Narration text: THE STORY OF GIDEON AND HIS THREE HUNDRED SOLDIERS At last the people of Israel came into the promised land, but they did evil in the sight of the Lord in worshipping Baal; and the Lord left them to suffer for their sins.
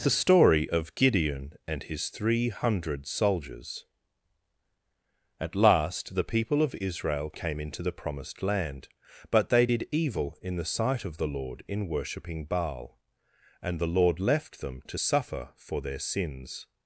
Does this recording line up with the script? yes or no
yes